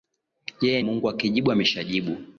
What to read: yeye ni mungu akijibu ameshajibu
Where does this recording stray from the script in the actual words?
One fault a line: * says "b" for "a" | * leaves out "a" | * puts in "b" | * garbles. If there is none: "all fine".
* leaves out "ni"